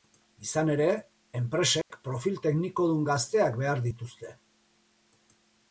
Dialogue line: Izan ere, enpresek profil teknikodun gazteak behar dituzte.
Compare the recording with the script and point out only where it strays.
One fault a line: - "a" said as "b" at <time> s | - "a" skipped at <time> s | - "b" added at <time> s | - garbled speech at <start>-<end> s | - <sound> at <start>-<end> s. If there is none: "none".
- dropout at 1.8-1.9 s